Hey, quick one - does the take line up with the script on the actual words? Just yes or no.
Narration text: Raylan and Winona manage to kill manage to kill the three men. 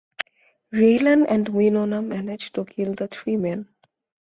no